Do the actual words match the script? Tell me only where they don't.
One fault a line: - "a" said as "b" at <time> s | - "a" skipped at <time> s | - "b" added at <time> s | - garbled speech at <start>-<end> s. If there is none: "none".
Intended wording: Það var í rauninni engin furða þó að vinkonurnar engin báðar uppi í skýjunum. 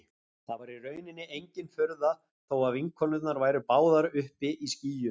- "engin" said as "væru" at 3.4 s